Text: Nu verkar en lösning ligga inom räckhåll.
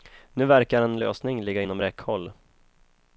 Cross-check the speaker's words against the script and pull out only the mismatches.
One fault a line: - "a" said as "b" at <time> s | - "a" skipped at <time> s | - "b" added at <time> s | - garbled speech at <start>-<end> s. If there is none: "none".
none